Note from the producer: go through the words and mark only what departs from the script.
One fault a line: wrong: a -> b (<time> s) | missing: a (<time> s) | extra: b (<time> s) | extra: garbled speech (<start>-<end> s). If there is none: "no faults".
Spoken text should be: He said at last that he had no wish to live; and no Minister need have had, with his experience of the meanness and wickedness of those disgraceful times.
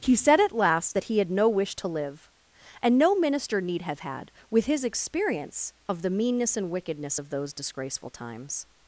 no faults